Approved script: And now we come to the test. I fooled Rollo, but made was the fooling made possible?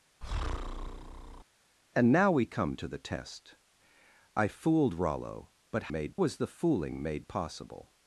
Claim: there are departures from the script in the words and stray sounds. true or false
true